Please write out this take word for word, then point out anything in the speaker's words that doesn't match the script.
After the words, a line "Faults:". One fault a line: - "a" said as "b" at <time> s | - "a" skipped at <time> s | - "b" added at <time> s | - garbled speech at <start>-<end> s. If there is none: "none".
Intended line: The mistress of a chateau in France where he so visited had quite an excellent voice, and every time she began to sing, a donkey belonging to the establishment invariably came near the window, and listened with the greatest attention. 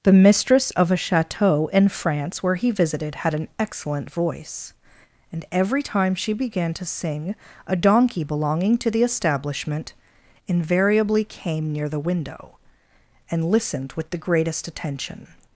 The mistress of a chateau in France where he visited had an excellent voice, and every time she began to sing, a donkey belonging to the establishment invariably came near the window, and listened with the greatest attention.
Faults:
- "so" skipped at 2.7 s
- "quite" skipped at 3.4 s